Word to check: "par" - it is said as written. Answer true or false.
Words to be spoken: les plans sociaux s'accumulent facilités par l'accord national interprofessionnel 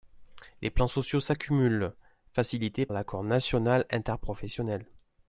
false